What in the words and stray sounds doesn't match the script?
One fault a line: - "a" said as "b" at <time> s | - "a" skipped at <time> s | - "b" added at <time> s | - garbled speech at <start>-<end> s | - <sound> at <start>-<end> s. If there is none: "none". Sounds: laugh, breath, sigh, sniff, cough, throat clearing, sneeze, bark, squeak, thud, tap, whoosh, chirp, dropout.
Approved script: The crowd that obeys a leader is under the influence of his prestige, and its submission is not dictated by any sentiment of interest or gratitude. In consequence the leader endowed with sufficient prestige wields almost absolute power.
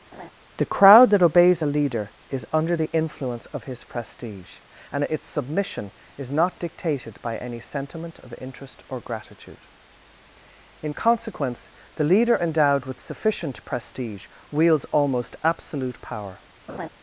- laugh at 0.1-0.3 s
- laugh at 16.7-16.9 s